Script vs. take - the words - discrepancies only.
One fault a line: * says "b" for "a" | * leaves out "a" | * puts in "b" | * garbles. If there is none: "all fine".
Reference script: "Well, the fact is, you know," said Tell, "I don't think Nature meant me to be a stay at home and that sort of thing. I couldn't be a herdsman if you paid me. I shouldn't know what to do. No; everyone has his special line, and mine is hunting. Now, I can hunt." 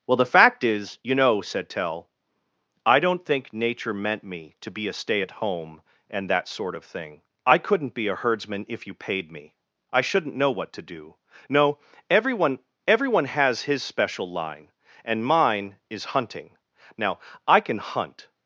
* puts in "everyone"